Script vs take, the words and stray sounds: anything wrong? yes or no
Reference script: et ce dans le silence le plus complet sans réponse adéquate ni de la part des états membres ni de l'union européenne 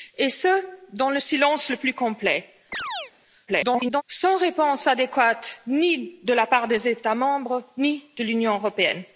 yes